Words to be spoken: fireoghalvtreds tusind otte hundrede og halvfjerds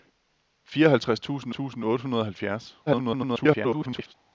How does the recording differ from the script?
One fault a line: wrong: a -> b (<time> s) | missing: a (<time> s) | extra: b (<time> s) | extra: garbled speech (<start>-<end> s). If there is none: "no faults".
extra: tusind (1.5 s)
extra: garbled speech (2.9-4.1 s)